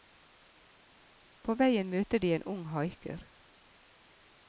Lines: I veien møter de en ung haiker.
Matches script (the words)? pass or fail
fail